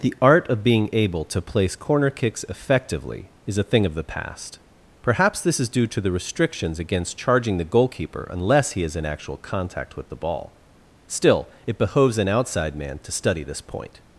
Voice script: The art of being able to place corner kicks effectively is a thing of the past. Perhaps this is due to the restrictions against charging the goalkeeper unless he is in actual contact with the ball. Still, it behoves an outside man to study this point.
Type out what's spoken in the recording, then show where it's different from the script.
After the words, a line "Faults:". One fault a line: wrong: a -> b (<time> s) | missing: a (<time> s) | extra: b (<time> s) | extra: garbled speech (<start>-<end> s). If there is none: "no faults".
The art of being able to place corner kicks effectively is a thing of the past. Perhaps this is due to the restrictions against charging the goalkeeper unless he is in actual contact with the ball. Still, it behoves an outside man to study this point.
Faults:
no faults